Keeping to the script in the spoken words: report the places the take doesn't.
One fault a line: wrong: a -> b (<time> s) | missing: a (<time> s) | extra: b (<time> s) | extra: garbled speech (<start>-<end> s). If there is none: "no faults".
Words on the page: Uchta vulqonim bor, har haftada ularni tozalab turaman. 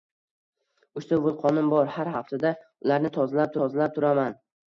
extra: tozalab (3.6 s)